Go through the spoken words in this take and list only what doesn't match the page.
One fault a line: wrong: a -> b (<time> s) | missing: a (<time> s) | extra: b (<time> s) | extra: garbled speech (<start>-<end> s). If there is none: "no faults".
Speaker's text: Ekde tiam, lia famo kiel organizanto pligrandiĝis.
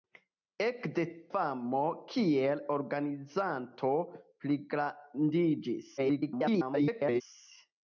missing: tiam lia (1.0 s)
extra: garbled speech (6.0-7.2 s)